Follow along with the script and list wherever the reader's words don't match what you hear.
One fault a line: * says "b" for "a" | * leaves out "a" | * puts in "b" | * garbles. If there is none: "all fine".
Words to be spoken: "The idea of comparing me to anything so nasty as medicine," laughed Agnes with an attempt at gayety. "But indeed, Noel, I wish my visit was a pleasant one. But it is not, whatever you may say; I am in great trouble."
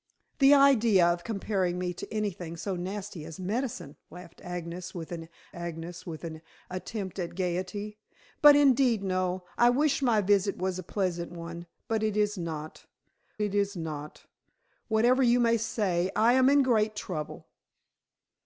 * puts in "Agnes with an"
* puts in "it is not"